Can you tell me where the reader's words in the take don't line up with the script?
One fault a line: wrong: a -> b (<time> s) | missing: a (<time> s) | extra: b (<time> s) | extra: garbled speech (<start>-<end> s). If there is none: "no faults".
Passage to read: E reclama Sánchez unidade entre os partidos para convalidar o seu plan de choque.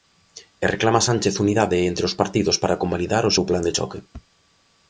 no faults